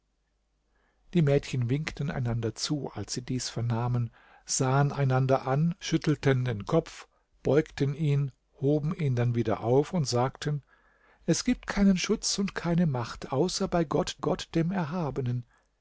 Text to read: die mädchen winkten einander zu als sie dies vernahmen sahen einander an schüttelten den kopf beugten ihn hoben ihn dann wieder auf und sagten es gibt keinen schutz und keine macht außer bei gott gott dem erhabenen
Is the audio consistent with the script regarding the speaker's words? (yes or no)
yes